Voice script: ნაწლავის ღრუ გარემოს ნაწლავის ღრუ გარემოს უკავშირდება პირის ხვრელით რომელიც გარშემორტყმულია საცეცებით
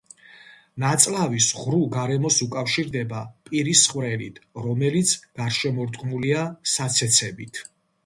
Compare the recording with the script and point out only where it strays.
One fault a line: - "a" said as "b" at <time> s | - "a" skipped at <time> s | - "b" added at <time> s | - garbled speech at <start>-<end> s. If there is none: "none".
- "ნაწლავის ღრუ გარემოს" skipped at 2.4 s